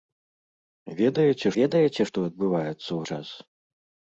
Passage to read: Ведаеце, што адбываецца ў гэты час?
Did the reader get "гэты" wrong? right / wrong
wrong